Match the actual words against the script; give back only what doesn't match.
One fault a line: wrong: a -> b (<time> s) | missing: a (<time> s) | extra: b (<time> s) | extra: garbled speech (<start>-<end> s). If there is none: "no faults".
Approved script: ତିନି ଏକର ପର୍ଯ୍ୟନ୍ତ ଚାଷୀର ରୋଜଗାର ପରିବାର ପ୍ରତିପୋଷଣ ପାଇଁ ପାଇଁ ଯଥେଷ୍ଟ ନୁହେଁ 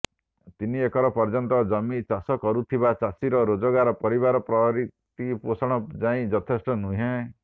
extra: ଜମି ଚାଷ କରୁଥିବା (1.7 s)
missing: ପାଇଁ (6.3 s)